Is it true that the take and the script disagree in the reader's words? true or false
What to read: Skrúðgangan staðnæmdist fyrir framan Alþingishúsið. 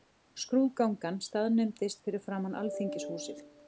false